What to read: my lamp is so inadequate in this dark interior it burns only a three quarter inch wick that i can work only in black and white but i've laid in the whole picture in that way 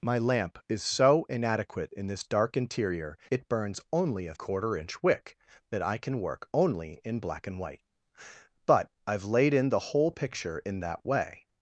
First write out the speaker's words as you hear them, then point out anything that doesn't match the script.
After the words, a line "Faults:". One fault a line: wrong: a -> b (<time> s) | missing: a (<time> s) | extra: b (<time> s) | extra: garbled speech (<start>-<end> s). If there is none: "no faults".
my lamp is so inadequate in this dark interior it burns only a quarter inch wick that i can work only in black and white but i've laid in the whole picture in that way
Faults:
missing: three (4.3 s)